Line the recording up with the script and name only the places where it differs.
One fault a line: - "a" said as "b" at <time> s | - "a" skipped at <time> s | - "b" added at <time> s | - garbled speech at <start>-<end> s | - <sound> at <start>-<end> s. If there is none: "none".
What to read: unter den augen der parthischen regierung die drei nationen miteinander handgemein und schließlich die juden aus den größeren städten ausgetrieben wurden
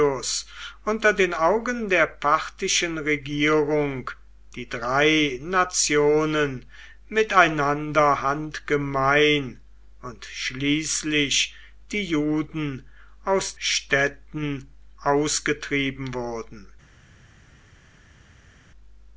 - "den größeren" skipped at 13.6 s